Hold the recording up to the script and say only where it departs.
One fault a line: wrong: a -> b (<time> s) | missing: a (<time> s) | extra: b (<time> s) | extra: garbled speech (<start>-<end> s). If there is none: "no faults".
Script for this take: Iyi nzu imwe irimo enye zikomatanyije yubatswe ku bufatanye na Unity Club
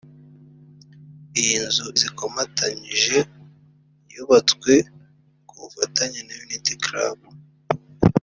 missing: imwe irimo enye (1.9 s)